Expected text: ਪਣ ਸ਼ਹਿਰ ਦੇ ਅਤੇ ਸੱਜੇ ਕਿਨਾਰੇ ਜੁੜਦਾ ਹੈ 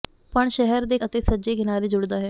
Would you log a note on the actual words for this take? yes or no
no